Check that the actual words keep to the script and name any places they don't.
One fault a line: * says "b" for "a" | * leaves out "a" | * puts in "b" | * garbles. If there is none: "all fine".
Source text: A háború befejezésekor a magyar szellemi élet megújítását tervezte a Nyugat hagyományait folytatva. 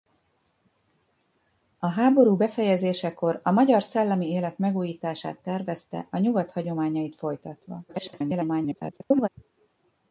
* garbles